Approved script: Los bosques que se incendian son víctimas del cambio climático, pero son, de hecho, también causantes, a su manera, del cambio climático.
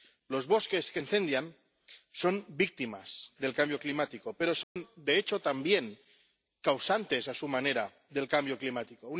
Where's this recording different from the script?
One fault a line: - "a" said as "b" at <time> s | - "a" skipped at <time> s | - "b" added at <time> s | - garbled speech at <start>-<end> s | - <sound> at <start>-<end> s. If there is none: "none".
- "se" skipped at 1.0 s
- dropout at 4.6-4.8 s